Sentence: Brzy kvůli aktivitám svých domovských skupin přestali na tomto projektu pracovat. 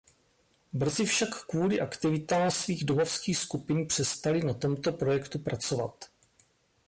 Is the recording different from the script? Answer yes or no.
yes